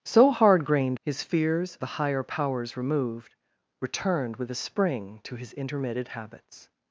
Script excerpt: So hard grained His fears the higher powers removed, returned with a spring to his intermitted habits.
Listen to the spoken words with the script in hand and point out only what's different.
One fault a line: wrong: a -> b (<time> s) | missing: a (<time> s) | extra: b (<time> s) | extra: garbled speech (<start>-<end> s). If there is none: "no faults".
no faults